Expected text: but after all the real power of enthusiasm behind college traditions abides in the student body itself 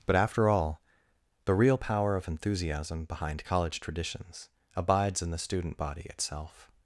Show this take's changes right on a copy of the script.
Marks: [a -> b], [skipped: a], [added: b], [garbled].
but after all the real power of enthusiasm behind college traditions abides in the student body itself